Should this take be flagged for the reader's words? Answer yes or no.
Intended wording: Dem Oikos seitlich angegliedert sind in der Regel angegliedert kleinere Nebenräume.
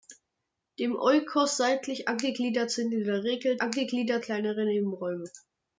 no